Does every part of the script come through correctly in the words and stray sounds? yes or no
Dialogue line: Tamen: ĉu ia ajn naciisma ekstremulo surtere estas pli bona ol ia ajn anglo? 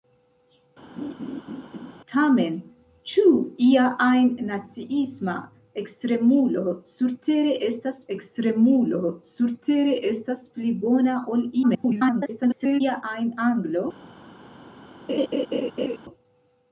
no